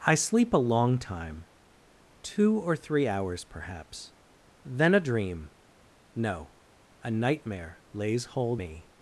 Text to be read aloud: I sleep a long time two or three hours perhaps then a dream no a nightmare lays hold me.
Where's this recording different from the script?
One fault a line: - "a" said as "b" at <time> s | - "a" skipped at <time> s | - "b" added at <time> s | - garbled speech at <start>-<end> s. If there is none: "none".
none